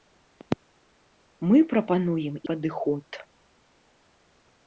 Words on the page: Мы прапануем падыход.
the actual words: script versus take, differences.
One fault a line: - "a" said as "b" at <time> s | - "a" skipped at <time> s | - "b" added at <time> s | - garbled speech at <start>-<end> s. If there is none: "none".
none